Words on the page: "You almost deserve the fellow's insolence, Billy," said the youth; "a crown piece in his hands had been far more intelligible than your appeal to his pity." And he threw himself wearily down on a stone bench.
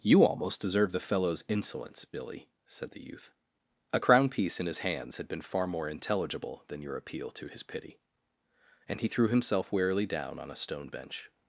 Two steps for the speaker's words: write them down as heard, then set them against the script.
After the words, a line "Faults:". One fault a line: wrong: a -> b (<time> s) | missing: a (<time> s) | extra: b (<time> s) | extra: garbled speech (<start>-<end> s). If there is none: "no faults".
"You almost deserve the fellow's insolence, Billy," said the youth; "a crown piece in his hands had been far more intelligible than your appeal to his pity." And he threw himself wearily down on a stone bench.
Faults:
no faults